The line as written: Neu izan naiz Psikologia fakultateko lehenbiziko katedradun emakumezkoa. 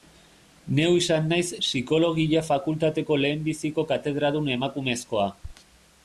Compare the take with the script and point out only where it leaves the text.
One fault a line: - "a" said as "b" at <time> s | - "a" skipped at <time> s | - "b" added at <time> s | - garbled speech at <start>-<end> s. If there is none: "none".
none